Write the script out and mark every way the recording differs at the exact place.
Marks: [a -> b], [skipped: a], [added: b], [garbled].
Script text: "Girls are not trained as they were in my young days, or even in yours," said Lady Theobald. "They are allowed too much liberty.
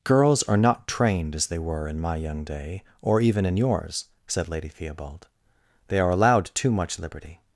"Girls are not trained as they were in my young [days, -> day] or even in yours," said Lady Theobald. "They are allowed too much liberty.